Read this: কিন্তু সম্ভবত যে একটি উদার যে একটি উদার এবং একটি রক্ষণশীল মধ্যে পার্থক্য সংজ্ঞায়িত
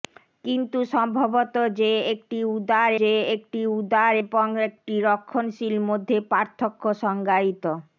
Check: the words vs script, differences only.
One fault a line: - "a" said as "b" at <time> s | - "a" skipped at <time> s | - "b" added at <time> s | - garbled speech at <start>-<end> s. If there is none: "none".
none